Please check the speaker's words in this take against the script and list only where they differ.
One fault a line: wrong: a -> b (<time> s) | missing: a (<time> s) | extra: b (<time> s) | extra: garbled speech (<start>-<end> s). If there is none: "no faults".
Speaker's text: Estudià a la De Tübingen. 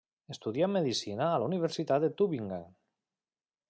extra: medicina (0.8 s)
extra: Universitat (1.5 s)